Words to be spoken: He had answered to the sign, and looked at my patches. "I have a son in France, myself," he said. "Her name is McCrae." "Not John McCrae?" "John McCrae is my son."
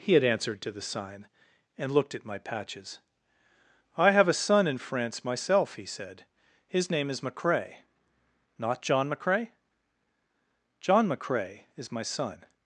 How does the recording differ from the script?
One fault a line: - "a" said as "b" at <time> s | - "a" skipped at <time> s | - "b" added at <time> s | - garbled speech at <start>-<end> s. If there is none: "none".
- "Her" said as "His" at 6.7 s